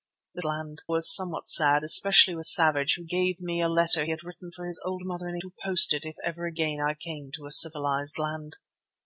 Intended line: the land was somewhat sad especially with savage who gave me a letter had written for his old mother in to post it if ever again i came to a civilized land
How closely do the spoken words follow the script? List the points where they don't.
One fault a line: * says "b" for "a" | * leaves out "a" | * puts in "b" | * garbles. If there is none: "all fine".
all fine